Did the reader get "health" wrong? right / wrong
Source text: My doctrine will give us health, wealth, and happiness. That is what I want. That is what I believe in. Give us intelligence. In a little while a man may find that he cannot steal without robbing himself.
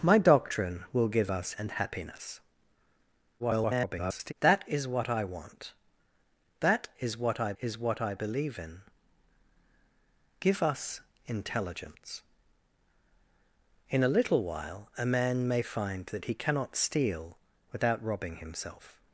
wrong